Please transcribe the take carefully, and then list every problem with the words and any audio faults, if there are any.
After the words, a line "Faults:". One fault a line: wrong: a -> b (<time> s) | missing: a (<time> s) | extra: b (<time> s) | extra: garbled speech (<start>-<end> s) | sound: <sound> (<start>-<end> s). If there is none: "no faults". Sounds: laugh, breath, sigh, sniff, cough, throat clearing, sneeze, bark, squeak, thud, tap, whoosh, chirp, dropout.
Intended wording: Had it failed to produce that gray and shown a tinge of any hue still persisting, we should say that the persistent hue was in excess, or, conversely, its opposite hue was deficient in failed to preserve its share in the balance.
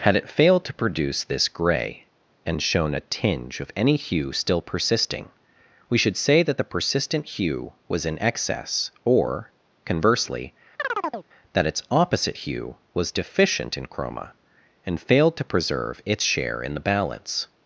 Had it failed to produce this gray and shown a tinge of any hue still persisting, we should say that the persistent hue was in excess, or, conversely, that its opposite hue was deficient in chroma, and failed to preserve its share in the balance.
Faults:
wrong: that -> this (1.2 s)
sound: chirp (10.8-11.3 s)
extra: that (11.5 s)
extra: chroma and (13.9 s)